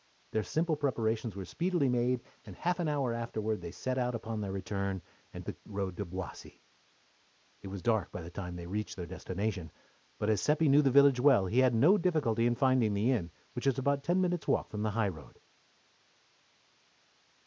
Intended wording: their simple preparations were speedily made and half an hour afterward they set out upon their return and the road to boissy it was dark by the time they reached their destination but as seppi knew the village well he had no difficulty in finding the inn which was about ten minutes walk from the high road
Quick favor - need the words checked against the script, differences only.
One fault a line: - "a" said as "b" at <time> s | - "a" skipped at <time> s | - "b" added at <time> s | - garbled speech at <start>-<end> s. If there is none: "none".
none